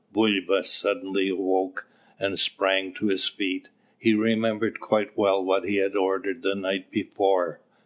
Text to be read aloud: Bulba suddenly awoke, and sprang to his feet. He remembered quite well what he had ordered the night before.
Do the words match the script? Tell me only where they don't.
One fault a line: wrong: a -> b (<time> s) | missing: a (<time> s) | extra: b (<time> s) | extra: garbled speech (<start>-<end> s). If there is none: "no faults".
no faults